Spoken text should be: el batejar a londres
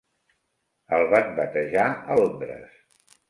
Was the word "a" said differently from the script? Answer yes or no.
no